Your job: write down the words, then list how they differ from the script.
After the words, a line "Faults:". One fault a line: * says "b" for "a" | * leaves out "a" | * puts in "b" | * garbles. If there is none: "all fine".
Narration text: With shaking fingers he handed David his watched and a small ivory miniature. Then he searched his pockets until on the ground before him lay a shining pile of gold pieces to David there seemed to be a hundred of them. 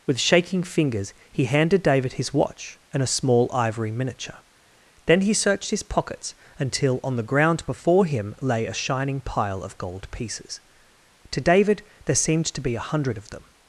With shaking fingers he handed David his watch and a small ivory miniature. Then he searched his pockets until on the ground before him lay a shining pile of gold pieces to David there seemed to be a hundred of them.
Faults:
* says "watch" for "watched"